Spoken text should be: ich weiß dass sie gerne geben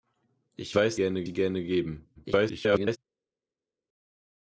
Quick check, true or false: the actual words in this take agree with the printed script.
false